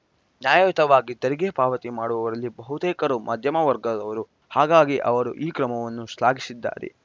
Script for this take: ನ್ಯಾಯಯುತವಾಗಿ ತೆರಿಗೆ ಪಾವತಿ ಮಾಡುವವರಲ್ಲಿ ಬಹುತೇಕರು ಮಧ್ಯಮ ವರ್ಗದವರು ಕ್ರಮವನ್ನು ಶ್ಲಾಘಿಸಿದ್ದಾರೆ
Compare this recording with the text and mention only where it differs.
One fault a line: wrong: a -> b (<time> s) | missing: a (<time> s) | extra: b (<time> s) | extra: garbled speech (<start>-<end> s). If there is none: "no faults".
extra: ಹಾಗಾಗಿ ಅವರು ಈ (4.5 s)